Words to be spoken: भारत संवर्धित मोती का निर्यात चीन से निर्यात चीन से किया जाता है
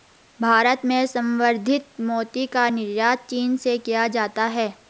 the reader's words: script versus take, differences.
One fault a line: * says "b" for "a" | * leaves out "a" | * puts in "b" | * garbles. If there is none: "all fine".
* puts in "में"
* leaves out "निर्यात चीन से"